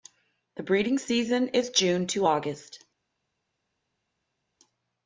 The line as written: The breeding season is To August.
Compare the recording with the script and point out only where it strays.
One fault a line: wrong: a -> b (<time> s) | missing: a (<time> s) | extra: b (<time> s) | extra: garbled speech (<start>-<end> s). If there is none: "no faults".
extra: June (1.7 s)